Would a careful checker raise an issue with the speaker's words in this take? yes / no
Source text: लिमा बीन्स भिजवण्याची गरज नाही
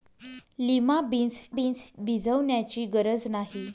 yes